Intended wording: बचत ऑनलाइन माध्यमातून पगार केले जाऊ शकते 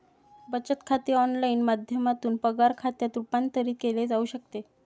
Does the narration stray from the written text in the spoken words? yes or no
yes